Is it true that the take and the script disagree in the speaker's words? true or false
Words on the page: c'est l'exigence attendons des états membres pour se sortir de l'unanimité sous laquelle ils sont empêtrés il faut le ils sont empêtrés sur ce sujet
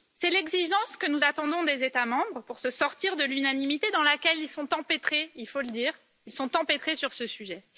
true